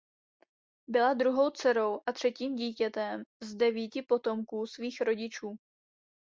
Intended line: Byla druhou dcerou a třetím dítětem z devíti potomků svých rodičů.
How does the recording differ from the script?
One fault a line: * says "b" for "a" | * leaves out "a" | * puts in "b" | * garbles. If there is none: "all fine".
all fine